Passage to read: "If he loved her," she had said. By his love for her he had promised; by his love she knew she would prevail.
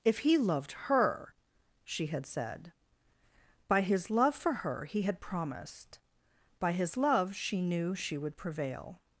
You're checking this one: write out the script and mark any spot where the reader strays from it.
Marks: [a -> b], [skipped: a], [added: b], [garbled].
"If he loved her," she had said. By his love for her he had promised; by his love she knew she would prevail.